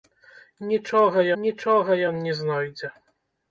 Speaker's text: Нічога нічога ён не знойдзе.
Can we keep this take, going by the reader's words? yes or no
yes